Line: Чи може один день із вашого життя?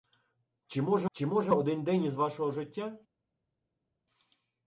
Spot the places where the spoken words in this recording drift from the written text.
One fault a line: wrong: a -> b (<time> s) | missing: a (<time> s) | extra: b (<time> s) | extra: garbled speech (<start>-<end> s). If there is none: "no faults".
extra: чи може (1.1 s)